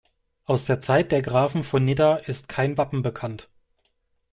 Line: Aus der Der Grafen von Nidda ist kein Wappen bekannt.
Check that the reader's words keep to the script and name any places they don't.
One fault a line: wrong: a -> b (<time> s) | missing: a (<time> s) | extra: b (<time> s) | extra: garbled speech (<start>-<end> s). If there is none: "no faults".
extra: Zeit (0.8 s)